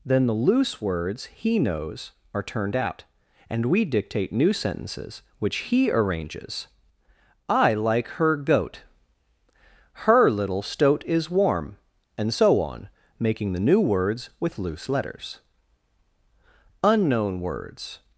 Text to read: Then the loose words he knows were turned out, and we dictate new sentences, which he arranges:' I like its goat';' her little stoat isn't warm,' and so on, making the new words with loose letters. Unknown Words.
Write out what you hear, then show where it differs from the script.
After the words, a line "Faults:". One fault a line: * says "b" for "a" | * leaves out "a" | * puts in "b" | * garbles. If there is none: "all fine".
Then the loose words he knows are turned out, and we dictate new sentences, which he arranges:' I like her goat';' her little stoat is warm,' and so on, making the new words with loose letters. Unknown Words.
Faults:
* says "are" for "were"
* says "her" for "its"
* says "is" for "isn't"